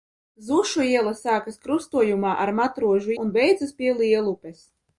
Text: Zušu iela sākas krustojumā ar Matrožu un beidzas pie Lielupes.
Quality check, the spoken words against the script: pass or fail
pass